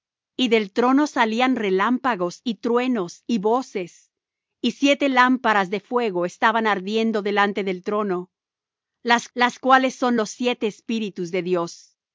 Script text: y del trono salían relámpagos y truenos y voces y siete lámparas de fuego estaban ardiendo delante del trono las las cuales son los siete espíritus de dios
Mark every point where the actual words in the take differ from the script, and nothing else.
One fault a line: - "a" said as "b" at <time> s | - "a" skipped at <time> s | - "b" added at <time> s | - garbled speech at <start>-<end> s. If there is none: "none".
none